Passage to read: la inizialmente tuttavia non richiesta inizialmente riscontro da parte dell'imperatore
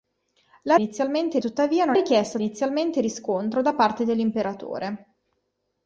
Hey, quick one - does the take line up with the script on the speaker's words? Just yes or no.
yes